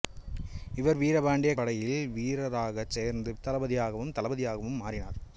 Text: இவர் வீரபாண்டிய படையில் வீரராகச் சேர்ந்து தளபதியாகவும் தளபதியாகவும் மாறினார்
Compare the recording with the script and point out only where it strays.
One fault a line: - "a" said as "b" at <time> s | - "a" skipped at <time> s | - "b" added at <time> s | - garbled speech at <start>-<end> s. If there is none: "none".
none